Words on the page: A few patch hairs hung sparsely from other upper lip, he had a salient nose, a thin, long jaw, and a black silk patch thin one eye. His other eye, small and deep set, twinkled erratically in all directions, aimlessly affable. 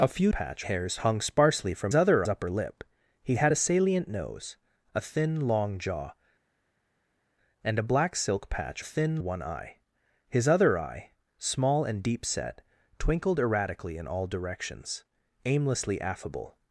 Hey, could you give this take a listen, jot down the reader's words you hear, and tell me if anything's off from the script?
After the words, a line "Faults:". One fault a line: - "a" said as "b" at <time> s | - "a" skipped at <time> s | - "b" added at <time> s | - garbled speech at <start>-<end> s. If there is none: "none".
A few patch hairs hung sparsely from other upper lip, he had a salient nose, a thin, long jaw, and a black silk patch thin one eye. His other eye, small and deep set, twinkled erratically in all directions, aimlessly affable.
Faults:
none